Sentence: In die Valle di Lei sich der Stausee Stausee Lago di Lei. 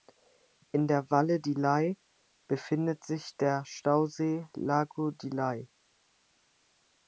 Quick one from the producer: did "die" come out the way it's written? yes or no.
no